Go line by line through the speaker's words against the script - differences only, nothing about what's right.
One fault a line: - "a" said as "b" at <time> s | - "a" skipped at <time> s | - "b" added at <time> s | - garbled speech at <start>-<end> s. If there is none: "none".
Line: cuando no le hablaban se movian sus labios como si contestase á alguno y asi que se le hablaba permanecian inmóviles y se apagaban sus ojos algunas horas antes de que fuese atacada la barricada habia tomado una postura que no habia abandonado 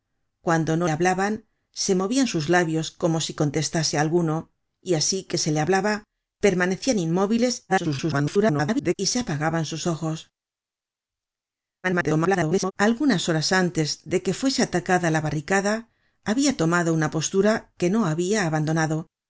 - "le" skipped at 0.9 s
- garbled speech at 7.7-8.9 s
- garbled speech at 11.8-12.7 s